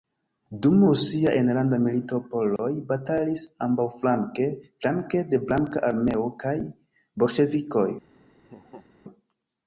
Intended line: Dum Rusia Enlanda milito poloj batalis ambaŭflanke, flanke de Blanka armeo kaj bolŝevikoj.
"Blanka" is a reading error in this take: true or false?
false